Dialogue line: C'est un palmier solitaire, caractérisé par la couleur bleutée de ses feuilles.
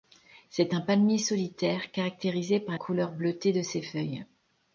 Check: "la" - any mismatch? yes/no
yes